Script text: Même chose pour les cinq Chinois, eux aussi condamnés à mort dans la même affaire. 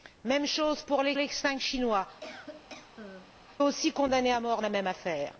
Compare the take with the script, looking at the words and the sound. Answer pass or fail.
fail